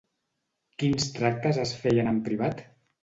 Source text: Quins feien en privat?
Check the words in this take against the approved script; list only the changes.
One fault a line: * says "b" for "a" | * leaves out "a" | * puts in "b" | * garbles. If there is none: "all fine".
* puts in "tractes es"